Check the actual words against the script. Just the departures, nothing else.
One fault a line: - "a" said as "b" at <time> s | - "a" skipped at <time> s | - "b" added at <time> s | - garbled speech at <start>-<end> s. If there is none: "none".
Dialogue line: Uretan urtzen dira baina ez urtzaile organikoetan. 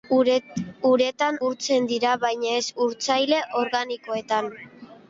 none